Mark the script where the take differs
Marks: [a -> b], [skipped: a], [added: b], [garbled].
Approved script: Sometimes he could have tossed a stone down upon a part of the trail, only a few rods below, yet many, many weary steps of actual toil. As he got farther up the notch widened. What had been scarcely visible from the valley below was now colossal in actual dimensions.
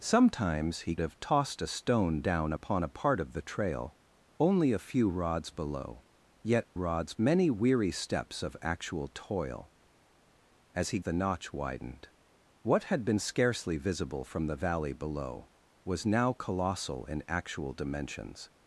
Sometimes he [skipped: could] have tossed a stone down upon a part of the trail, only a few rods below, yet [many, -> rods] many weary steps of actual toil. As he [skipped: got farther up] the notch widened. What had been scarcely visible from the valley below was now colossal in actual dimensions.